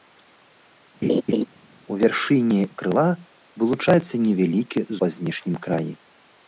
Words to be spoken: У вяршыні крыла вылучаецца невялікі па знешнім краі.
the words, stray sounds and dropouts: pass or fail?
fail